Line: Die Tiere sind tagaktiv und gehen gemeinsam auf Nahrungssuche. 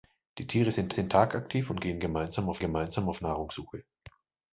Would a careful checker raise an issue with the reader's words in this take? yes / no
yes